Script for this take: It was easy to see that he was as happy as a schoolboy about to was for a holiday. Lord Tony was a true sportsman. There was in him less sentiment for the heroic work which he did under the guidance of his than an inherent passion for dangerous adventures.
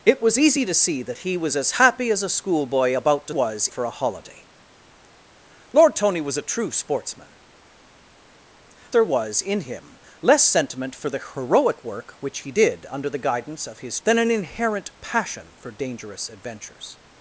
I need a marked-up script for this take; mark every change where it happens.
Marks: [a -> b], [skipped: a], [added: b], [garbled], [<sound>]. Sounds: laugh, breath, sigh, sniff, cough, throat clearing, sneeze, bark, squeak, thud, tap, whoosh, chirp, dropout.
It was easy to see that he was as happy as a schoolboy about to was for a holiday. Lord Tony was a true sportsman. There was in him less sentiment for the heroic work which he did under the guidance of his than an inherent passion for dangerous adventures.